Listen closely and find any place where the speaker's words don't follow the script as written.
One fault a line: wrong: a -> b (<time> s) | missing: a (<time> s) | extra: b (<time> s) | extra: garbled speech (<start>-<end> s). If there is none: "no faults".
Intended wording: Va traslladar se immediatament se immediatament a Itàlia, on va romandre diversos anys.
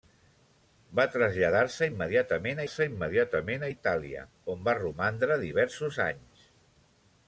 no faults